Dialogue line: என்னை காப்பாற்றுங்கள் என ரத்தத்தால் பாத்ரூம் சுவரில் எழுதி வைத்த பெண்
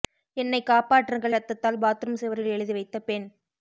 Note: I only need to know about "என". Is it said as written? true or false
false